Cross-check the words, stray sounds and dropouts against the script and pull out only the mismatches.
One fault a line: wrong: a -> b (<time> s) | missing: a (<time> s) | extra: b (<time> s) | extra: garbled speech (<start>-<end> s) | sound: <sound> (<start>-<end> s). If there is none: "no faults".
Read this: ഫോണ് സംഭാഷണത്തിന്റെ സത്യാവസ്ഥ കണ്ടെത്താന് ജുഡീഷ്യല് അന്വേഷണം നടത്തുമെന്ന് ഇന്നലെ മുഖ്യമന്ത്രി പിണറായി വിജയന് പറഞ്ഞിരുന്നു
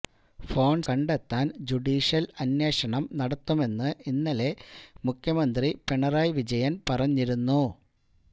missing: സംഭാഷണത്തിന്റെ സത്യാവസ്ഥ (0.8 s)